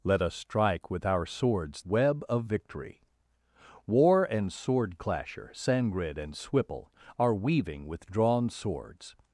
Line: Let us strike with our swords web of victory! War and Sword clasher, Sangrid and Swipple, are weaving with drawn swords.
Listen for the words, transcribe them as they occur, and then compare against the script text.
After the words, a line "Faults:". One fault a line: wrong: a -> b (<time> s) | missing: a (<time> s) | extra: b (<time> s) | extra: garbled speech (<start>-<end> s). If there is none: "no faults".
Let us strike with our swords web of victory! War and Sword clasher, Sangrid and Swipple, are weaving with drawn swords.
Faults:
no faults